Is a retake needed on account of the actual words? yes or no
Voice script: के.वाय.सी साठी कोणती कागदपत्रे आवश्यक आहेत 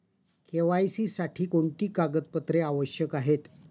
no